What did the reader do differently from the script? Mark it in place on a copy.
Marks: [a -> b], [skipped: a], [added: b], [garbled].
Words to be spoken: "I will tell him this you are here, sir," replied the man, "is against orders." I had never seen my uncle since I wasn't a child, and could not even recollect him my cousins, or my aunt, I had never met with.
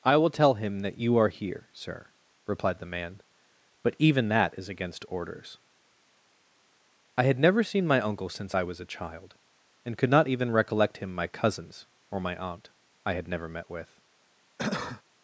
"I will tell him [this -> that] you are here, sir," replied the man, [added: but even that] "is against orders." I had never seen my uncle since I [wasn't -> was] a child, and could not even recollect him my cousins, or my aunt, I had never met with.